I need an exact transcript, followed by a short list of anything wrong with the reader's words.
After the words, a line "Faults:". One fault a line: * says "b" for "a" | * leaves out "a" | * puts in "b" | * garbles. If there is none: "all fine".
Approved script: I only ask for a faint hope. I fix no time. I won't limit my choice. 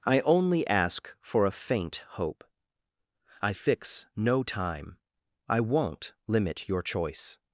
I only ask for a faint hope. I fix no time. I won't limit your choice.
Faults:
* says "your" for "my"